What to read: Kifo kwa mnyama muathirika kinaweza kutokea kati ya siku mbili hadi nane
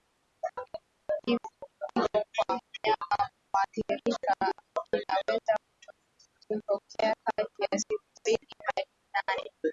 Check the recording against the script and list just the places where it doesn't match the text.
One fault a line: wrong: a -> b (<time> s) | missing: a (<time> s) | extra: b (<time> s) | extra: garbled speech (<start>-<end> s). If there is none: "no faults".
no faults